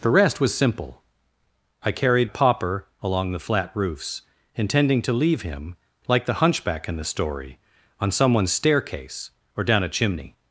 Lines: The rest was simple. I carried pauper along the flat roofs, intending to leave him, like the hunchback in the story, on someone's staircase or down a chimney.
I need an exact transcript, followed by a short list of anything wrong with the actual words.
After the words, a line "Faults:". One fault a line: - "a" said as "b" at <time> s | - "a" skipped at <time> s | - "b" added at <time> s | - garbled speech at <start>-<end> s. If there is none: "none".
The rest was simple. I carried pauper along the flat roofs, intending to leave him, like the hunchback in the story, on someone's staircase or down a chimney.
Faults:
none